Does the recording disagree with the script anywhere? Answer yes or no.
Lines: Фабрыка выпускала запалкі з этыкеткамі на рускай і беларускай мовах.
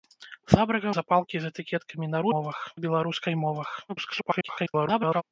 yes